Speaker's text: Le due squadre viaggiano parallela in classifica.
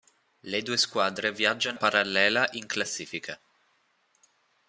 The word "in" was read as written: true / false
true